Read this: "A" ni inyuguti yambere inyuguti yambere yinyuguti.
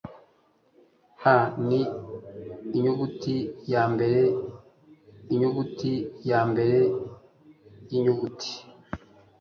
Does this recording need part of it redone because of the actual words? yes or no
no